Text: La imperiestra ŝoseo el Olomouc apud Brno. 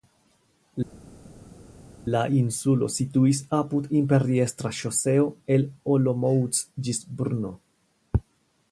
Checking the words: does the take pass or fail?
fail